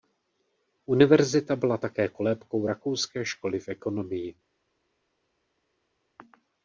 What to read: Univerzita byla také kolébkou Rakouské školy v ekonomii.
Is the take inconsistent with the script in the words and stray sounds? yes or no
no